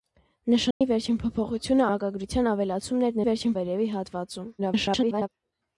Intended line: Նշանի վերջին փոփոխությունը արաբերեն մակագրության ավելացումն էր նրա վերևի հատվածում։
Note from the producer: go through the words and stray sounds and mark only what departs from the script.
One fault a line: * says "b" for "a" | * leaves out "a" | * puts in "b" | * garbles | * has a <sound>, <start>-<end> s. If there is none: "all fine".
* has a dropout, 0.7-0.8 s
* leaves out "արաբերեն"
* says "վերջին" for "նրա"
* garbles